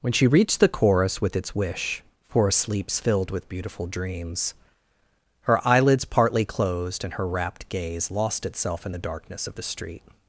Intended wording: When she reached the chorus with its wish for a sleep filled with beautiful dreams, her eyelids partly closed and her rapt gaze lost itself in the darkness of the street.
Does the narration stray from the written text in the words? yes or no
yes